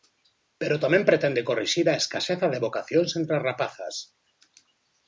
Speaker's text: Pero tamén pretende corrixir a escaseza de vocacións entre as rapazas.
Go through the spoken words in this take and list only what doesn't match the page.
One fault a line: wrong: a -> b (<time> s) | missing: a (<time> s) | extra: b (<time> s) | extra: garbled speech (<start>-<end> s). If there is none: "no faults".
no faults